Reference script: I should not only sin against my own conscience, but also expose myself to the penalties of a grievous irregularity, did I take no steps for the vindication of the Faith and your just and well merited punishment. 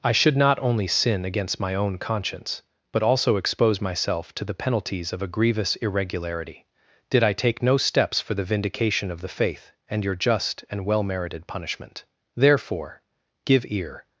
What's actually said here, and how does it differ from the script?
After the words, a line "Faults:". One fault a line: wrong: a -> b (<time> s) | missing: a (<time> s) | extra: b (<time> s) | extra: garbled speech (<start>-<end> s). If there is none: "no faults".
I should not only sin against my own conscience, but also expose myself to the penalties of a grievous irregularity, did I take no steps for the vindication of the Faith and your just and well merited punishment. Therefore give ear
Faults:
extra: Therefore give ear (12.3 s)